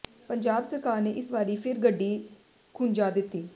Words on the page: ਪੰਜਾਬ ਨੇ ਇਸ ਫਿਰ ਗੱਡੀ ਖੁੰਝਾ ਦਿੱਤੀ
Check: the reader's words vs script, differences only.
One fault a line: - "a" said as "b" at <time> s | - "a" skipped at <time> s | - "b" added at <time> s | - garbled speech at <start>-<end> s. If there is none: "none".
- "ਸਰਕਾਰ" added at 0.6 s
- "ਵਾਰੀ" added at 1.3 s